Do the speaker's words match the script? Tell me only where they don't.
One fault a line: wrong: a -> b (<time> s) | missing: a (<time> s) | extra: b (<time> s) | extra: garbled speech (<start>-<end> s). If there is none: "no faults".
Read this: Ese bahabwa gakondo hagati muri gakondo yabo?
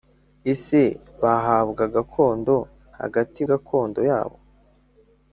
missing: muri (3.4 s)